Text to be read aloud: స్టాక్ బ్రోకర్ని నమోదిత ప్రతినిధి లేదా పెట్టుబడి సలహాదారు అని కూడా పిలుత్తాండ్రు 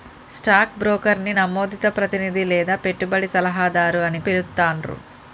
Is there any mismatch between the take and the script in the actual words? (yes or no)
yes